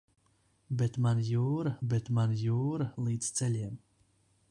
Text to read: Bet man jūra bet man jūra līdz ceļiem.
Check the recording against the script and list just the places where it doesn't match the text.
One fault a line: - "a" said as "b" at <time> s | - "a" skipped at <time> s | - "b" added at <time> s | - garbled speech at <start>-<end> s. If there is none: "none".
none